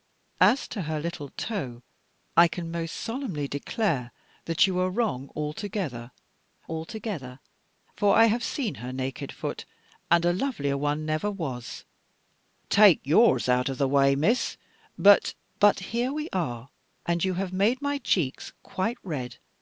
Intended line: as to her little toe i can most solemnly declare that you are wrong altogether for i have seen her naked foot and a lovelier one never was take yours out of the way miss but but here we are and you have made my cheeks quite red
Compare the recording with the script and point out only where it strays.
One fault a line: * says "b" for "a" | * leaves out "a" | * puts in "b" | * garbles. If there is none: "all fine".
* puts in "altogether"